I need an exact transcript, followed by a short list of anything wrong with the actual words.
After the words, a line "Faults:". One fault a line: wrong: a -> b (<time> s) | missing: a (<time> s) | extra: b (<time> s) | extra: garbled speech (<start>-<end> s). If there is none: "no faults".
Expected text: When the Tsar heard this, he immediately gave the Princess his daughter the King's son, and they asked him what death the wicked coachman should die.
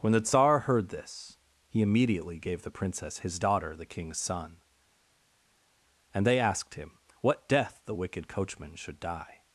When the Tsar heard this, he immediately gave the Princess his daughter the King's son, and they asked him what death the wicked coachman should die.
Faults:
no faults